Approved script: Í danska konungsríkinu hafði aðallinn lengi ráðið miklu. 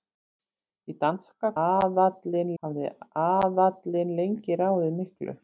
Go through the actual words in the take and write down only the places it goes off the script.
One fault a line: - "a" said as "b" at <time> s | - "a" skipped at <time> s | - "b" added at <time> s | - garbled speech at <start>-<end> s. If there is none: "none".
- "konungsríkinu" said as "aðallinn" at 1.6 s